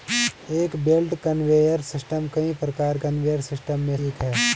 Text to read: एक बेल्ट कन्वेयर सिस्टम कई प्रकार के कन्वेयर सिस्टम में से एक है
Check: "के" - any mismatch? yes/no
yes